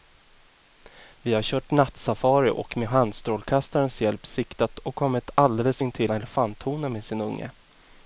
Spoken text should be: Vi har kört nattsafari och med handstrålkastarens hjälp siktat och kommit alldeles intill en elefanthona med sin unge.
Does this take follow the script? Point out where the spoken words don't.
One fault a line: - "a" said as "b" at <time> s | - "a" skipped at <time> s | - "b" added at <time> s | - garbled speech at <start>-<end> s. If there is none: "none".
- "en" skipped at 6.1 s